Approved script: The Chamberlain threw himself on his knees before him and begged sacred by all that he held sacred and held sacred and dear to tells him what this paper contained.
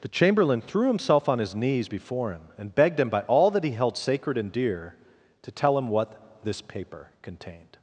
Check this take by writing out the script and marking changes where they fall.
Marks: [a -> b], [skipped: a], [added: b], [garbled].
The Chamberlain threw himself on his knees before him and begged [sacred -> him] by all that he held sacred and [skipped: held sacred and] dear to [tells -> tell] him what this paper contained.